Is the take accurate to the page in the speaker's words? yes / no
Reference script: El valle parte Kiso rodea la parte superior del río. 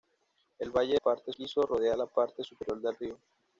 yes